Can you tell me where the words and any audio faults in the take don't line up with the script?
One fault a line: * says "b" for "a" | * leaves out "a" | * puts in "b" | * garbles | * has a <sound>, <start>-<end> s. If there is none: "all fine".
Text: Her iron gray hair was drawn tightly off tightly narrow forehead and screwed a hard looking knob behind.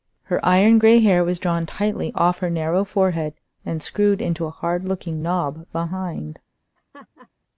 * says "her" for "tightly"
* puts in "into"
* has a laugh, 6.8-7.3 s